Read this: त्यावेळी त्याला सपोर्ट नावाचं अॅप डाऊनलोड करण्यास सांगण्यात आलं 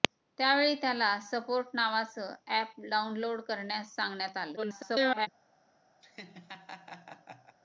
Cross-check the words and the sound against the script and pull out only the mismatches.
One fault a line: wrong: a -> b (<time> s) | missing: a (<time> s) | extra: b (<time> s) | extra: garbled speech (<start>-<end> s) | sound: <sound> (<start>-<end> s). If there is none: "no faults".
extra: garbled speech (4.6-5.3 s)
sound: laugh (6.0-7.6 s)